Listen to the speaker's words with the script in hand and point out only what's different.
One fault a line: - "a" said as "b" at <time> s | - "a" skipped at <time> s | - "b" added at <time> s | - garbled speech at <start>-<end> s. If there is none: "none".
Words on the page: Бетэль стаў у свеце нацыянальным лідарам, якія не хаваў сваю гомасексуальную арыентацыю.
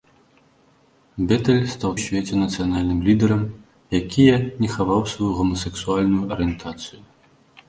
none